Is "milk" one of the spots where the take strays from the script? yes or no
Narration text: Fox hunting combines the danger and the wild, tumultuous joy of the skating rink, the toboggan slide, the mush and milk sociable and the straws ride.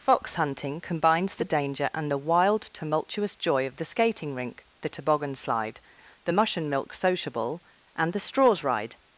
no